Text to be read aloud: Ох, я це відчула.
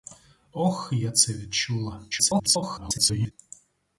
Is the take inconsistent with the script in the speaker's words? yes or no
yes